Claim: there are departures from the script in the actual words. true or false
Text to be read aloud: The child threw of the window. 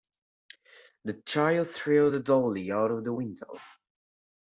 true